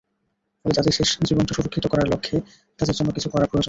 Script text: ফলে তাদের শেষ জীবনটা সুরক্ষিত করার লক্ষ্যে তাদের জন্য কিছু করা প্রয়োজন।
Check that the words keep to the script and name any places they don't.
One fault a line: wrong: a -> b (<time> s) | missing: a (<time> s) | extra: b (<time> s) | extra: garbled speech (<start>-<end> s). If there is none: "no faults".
no faults